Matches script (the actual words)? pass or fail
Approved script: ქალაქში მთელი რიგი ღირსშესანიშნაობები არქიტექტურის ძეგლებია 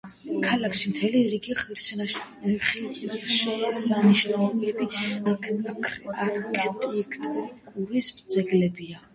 pass